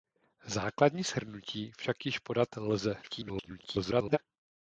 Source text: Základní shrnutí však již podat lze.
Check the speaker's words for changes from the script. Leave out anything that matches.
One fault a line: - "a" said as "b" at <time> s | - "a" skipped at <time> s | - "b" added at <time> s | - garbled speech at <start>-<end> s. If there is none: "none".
- garbled speech at 3.0-4.2 s